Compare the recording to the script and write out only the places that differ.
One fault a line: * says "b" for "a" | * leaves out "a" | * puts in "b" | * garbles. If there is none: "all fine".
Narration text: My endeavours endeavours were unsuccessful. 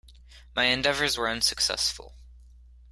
* leaves out "endeavours"